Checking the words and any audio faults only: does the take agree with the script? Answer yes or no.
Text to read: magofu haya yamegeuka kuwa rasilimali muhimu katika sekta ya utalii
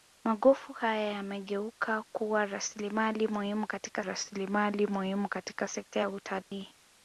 no